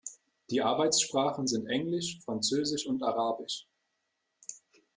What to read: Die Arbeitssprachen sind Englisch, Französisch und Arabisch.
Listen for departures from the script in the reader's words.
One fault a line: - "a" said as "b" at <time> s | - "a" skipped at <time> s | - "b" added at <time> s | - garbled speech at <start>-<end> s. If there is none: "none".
none